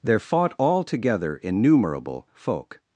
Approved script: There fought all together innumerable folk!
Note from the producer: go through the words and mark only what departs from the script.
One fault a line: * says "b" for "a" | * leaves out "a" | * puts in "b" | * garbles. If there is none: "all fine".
all fine